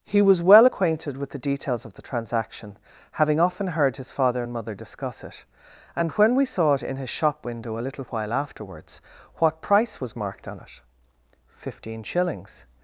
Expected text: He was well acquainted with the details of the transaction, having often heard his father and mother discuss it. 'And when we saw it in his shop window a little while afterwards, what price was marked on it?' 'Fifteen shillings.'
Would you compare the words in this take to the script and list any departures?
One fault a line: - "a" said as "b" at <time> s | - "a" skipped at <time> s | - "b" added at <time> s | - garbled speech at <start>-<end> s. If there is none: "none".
none